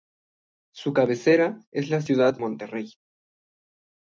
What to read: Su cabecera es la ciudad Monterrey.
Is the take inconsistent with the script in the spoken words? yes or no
no